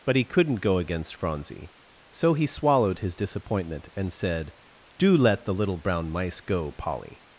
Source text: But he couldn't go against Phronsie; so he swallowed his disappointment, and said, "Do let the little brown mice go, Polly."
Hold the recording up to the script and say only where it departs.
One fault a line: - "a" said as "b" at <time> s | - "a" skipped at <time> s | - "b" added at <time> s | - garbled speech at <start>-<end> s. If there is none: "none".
none